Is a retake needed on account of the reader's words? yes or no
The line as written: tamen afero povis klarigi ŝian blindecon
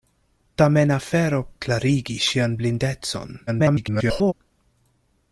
yes